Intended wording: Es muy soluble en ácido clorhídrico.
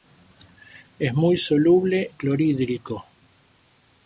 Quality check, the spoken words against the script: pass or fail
fail